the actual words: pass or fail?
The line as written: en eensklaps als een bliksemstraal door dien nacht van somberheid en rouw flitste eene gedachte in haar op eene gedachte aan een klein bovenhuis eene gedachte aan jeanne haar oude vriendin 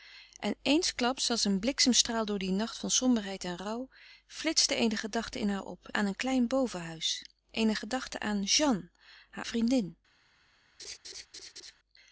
fail